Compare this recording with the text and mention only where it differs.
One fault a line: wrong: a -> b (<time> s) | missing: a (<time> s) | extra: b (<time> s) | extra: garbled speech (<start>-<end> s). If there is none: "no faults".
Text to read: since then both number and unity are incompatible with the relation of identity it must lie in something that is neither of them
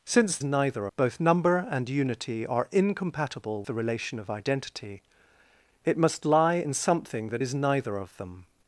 wrong: then -> neither (0.4 s)
missing: with (3.6 s)